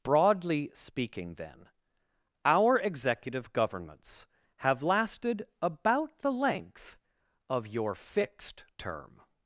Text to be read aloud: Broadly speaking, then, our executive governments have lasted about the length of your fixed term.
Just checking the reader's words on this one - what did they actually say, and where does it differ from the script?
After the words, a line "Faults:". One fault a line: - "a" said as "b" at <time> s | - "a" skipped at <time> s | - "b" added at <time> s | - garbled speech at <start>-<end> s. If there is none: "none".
Broadly speaking, then, our executive governments have lasted about the length of your fixed term.
Faults:
none